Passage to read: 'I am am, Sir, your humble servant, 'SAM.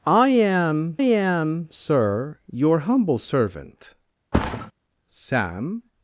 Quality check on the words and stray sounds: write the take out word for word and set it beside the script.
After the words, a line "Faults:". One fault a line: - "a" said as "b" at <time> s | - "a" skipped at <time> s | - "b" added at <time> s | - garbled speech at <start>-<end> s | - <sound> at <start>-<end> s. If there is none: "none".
'I am am, Sir, your humble servant, 'SAM.
Faults:
- thud at 4.3-4.7 s